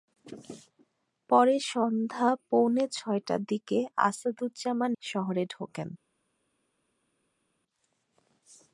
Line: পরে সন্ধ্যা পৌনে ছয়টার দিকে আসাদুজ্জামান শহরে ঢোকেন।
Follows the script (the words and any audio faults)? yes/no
yes